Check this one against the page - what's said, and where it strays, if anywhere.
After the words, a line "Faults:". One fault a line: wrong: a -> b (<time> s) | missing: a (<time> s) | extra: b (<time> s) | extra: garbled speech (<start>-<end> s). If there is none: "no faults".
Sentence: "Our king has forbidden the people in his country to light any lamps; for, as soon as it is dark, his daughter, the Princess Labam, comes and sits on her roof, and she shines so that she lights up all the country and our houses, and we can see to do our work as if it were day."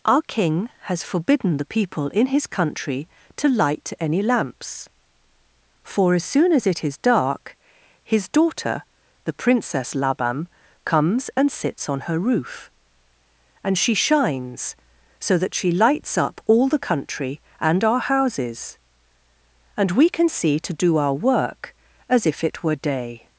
"Our king has forbidden the people in his country to light any lamps; for, as soon as it is dark, his daughter, the Princess Labam, comes and sits on her roof, and she shines so that she lights up all the country and our houses, and we can see to do our work as if it were day."
Faults:
no faults